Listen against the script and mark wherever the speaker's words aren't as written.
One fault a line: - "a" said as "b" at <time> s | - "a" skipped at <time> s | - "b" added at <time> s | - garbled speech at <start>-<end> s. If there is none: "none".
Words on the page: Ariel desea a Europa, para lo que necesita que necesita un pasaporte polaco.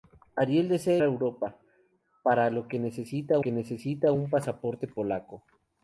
none